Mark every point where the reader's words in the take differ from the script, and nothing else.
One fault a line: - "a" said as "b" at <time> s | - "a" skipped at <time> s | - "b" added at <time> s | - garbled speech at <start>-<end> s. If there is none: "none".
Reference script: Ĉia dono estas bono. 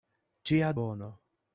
- "dono estas" skipped at 0.7 s